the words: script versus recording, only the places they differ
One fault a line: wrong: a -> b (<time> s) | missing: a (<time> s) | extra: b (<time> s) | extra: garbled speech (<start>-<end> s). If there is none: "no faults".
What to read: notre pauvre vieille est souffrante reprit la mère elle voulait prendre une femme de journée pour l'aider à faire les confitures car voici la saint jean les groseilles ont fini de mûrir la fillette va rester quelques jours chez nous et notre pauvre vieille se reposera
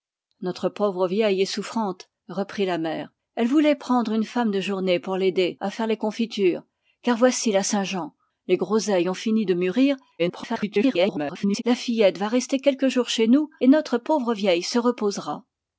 extra: garbled speech (10.2-11.6 s)